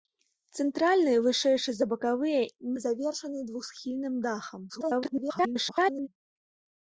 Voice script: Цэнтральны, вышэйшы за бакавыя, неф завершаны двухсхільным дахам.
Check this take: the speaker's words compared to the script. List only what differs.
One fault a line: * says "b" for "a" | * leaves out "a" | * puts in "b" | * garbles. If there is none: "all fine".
* leaves out "неф"
* garbles